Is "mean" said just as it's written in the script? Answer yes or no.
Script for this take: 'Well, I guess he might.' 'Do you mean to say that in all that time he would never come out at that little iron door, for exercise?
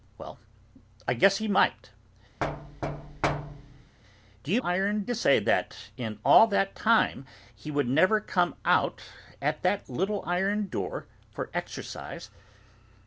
no